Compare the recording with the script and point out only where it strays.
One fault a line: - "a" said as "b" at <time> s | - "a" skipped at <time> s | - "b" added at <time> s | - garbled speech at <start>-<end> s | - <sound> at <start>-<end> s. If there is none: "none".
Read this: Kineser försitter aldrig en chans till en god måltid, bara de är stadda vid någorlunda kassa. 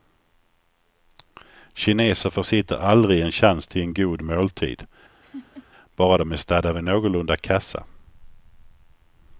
- laugh at 5.2-5.7 s